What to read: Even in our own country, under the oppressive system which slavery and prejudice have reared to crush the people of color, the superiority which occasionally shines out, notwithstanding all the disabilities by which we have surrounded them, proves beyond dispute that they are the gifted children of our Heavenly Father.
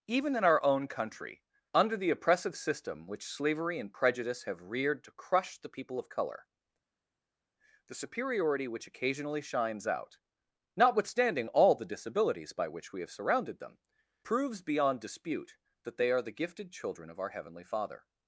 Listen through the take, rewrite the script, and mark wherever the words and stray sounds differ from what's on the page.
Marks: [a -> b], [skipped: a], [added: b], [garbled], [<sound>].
Even in our own country, under the oppressive system which slavery and prejudice have reared to crush the people of color, the superiority which occasionally shines out, notwithstanding all the disabilities by which we have surrounded them, proves beyond dispute that they are the gifted children of our Heavenly Father.